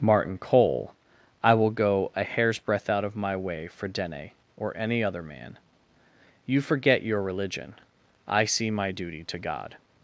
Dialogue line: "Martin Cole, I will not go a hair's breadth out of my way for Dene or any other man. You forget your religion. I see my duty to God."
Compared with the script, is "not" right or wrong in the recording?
wrong